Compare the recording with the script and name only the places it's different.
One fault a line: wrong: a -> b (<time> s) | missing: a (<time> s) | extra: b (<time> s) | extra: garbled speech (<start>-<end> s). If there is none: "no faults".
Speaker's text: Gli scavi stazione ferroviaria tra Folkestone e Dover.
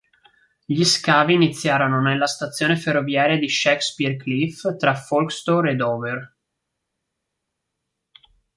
extra: iniziarono nella (1.4 s)
extra: di Shakespeare Cliff (3.4 s)